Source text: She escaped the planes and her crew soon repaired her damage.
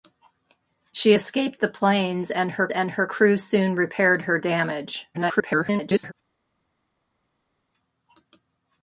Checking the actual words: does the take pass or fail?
fail